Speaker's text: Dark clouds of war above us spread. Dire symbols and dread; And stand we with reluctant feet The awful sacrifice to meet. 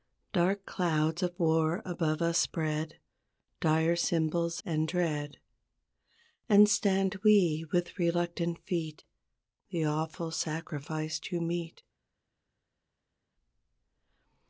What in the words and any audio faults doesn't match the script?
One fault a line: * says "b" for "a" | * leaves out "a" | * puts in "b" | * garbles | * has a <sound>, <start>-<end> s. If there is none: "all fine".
all fine